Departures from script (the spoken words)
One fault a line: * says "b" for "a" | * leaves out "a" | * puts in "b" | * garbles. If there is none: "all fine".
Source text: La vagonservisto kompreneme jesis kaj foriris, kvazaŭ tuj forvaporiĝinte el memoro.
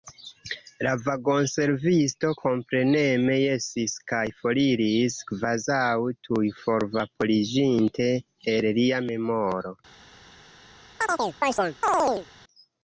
* puts in "lia"